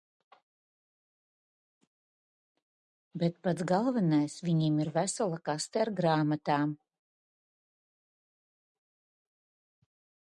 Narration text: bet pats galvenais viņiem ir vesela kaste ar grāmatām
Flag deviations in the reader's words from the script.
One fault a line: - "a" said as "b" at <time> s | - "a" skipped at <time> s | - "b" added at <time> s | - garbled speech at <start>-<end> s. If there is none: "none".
none